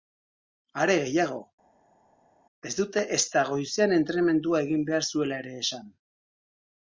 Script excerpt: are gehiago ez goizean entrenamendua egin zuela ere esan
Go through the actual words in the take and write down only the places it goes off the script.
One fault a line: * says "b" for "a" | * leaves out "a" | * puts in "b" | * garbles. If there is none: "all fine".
* puts in "dute ezta"
* puts in "behar"